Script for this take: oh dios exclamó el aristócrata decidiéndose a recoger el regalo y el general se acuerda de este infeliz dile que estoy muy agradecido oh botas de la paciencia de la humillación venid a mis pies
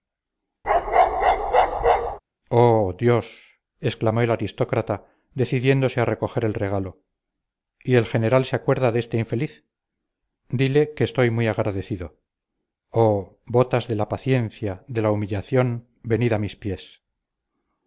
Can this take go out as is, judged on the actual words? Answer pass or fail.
pass